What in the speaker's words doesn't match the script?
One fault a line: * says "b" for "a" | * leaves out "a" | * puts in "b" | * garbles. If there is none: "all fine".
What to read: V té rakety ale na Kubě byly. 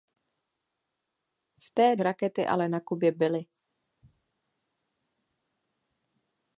all fine